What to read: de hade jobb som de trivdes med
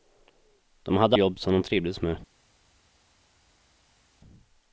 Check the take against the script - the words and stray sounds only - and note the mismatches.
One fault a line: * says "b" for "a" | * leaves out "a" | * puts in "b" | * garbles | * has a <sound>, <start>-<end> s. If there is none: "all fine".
all fine